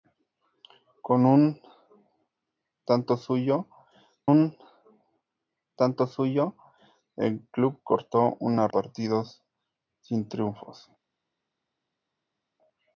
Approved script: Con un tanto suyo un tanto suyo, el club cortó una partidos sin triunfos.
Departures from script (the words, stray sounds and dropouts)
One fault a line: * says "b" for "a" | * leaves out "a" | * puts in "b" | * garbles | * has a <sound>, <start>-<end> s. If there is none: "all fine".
all fine